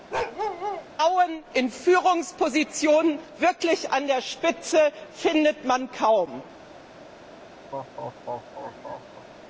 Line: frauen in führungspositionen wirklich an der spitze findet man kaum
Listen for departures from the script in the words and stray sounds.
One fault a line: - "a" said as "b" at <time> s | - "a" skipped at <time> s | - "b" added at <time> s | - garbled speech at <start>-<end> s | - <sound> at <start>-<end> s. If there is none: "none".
- bark at 0.1-0.9 s
- laugh at 7.7-9.3 s